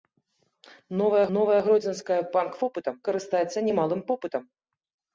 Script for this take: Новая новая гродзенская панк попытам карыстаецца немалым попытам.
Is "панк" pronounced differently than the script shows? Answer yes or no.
no